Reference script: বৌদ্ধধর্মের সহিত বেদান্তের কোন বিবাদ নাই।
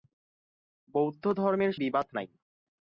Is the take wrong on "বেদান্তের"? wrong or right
wrong